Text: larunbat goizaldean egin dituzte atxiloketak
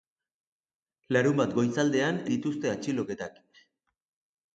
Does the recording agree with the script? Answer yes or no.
no